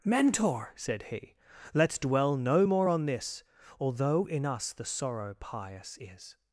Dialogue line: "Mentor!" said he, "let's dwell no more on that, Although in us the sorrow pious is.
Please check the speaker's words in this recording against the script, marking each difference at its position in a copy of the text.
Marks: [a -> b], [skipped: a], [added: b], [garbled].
"Mentor!" said he, "let's dwell no more on [that, -> this] Although in us the sorrow pious is.